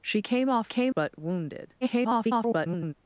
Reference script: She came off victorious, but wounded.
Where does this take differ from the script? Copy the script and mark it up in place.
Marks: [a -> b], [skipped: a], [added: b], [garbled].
She came off [victorious, -> came] but wounded. [garbled]